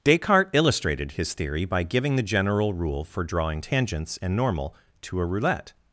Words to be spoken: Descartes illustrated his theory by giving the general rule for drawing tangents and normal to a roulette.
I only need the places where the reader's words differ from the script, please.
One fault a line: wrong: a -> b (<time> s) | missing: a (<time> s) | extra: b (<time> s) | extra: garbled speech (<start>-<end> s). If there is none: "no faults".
no faults